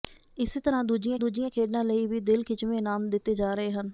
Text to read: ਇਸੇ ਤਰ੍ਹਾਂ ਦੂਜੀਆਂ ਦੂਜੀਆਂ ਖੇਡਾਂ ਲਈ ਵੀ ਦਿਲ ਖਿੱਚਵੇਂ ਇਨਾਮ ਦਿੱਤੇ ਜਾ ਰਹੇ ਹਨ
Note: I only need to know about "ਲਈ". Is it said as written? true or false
true